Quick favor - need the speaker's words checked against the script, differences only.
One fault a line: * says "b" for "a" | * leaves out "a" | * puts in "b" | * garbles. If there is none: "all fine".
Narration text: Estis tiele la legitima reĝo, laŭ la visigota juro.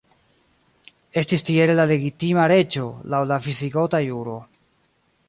all fine